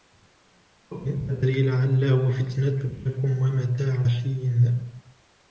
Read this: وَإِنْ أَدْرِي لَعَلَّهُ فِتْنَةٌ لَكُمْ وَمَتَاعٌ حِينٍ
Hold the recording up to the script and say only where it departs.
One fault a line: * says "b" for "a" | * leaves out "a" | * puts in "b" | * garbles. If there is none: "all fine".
all fine